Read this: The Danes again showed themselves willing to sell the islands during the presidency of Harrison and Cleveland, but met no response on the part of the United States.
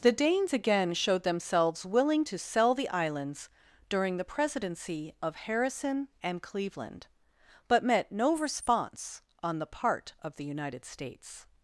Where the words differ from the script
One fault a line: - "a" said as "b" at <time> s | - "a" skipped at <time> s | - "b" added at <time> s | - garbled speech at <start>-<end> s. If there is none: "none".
none